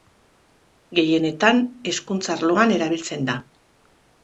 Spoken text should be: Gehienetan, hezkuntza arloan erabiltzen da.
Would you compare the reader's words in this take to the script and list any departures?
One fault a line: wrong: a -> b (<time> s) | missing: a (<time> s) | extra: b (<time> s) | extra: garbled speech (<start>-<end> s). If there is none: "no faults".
no faults